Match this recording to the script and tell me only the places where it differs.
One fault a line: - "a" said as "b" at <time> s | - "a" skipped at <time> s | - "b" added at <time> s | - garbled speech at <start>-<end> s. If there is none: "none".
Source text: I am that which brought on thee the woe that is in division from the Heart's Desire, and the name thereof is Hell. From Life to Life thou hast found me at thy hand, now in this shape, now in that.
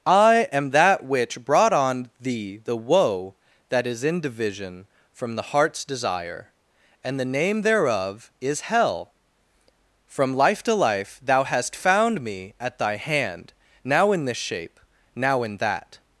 none